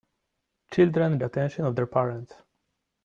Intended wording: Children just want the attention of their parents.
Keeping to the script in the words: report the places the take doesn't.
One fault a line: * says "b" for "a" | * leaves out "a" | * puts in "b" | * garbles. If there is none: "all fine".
* leaves out "just want the"